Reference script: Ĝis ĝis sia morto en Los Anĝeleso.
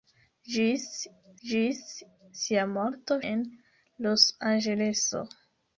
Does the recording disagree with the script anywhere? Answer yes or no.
no